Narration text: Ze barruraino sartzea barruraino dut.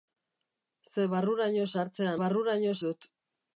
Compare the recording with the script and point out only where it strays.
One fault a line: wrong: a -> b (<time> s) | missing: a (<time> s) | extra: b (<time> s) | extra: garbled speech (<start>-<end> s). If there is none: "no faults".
no faults